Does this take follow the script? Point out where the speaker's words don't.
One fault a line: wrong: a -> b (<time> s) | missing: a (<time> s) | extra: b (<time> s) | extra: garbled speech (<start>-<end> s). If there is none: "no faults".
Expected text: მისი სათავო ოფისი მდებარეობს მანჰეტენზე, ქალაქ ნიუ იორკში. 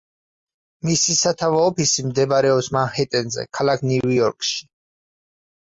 no faults